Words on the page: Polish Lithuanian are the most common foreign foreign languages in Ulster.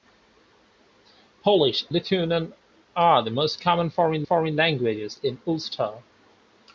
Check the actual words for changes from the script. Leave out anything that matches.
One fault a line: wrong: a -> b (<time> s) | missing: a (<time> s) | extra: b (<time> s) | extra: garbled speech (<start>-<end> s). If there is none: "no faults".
no faults